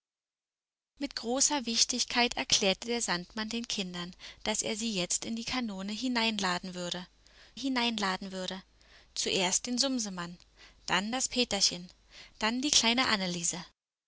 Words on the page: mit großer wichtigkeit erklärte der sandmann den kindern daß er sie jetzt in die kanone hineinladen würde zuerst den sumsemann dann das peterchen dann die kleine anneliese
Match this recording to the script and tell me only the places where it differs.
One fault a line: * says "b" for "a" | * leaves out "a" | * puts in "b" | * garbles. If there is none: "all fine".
* puts in "hineinladen würde"